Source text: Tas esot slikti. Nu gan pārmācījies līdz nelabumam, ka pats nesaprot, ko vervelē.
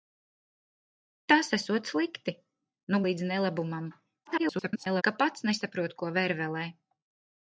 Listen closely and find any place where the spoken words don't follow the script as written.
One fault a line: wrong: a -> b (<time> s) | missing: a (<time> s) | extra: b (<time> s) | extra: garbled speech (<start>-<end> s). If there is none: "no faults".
missing: gan pārmācījies (3.0 s)
extra: garbled speech (4.2-5.0 s)